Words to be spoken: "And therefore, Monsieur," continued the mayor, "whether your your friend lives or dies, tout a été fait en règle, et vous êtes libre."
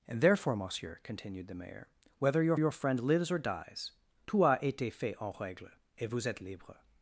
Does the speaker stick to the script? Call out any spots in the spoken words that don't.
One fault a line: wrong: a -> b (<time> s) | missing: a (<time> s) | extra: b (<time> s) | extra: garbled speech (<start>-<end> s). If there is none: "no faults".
no faults